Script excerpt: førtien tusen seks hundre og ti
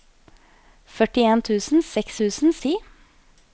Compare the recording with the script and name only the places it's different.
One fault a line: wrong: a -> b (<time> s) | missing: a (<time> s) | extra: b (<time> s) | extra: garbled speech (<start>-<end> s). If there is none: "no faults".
wrong: hundre -> tusen (2.2 s)